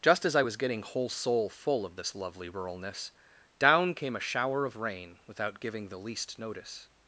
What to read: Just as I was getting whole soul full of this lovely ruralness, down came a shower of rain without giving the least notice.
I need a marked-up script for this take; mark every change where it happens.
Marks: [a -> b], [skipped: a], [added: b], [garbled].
Just as I was getting whole soul full of this lovely ruralness, down came a shower of rain without giving the least notice.